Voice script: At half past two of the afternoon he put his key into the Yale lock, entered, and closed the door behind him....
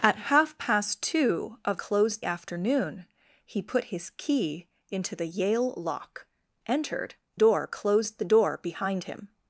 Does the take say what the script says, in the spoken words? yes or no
no